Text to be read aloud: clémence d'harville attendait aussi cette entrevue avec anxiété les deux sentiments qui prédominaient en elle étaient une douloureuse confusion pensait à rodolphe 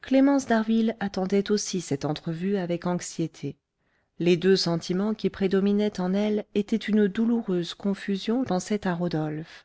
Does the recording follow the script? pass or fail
pass